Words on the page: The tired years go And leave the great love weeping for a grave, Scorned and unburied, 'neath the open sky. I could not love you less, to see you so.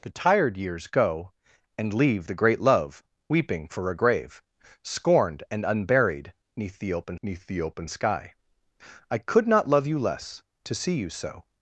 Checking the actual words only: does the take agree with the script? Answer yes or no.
no